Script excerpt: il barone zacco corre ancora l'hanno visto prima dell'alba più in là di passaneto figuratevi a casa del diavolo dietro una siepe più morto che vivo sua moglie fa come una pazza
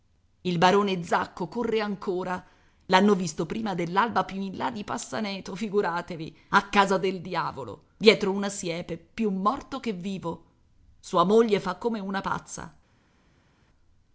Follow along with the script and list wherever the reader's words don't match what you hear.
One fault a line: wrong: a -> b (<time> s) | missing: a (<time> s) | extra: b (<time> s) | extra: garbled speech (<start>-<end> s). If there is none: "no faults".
no faults